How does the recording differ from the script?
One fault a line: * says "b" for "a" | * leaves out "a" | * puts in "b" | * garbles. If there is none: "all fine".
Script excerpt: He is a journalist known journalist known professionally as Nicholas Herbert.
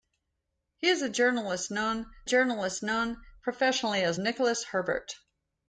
all fine